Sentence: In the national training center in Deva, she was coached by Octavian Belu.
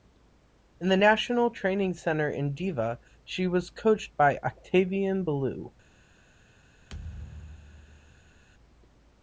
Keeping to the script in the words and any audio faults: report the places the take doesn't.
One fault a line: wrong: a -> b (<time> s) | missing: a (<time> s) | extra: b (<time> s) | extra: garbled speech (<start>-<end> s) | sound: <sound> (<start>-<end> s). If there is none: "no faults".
sound: thud (6.9-8.4 s)